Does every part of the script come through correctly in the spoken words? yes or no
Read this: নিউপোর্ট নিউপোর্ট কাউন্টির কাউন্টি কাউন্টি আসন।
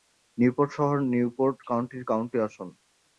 no